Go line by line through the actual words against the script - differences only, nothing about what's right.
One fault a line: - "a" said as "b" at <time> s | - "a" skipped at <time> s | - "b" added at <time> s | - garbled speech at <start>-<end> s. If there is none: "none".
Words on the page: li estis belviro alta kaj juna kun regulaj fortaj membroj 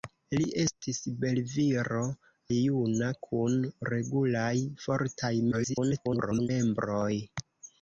- "alta kaj" skipped at 2.0 s
- garbled speech at 5.5-6.5 s